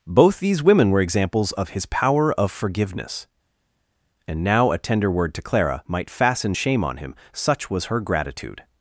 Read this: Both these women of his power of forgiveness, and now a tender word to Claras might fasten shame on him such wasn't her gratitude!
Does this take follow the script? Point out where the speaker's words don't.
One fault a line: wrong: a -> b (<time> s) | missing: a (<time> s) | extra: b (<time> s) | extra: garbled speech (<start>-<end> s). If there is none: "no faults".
extra: were examples (0.9 s)
wrong: Claras -> Clara (5.4 s)
wrong: wasn't -> was (7.7 s)